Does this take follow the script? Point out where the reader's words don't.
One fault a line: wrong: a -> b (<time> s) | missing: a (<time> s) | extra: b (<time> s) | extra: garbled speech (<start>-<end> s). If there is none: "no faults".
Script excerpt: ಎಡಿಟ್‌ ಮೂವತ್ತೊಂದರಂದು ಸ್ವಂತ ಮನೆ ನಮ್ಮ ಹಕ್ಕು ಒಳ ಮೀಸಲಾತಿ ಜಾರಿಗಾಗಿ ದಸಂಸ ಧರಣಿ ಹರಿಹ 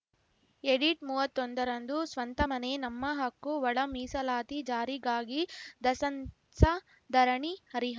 no faults